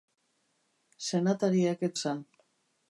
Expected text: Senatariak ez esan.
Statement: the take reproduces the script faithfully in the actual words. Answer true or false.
true